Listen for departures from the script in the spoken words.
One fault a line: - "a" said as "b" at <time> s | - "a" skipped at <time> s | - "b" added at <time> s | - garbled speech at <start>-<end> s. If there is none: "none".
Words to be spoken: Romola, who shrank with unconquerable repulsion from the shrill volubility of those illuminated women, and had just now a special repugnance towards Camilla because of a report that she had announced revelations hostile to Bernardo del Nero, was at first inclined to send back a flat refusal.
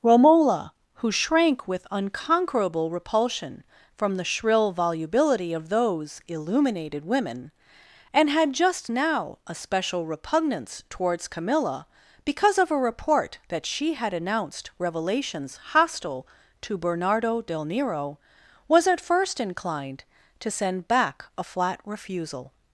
none